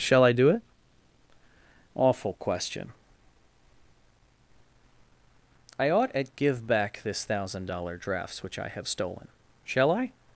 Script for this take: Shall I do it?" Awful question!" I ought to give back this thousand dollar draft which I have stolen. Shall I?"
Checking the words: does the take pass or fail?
fail